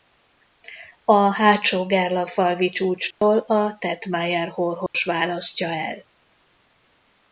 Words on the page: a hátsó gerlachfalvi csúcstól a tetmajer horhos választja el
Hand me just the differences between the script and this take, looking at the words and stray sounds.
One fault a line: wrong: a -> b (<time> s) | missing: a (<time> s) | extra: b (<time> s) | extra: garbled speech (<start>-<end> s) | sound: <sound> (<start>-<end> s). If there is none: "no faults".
sound: dropout (3.1-3.2 s)
sound: dropout (4.9-4.9 s)